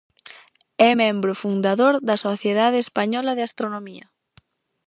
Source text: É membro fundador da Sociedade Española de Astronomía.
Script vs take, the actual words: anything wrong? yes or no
no